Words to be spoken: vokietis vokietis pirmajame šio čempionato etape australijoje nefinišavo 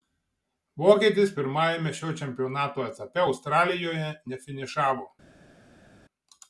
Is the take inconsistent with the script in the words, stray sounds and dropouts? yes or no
yes